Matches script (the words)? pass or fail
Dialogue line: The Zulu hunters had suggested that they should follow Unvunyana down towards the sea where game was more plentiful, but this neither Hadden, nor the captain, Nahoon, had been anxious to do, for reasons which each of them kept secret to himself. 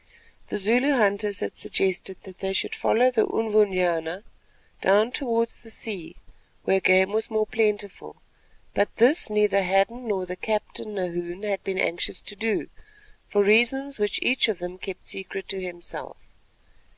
fail